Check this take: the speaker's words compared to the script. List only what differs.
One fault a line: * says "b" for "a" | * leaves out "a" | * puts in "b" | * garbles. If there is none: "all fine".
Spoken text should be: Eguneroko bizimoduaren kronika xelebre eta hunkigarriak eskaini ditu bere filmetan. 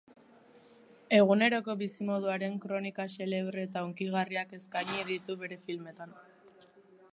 all fine